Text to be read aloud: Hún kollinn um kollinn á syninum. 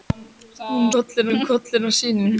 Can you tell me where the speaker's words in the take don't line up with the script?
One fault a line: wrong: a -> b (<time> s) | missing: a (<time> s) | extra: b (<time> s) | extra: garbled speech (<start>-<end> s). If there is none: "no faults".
no faults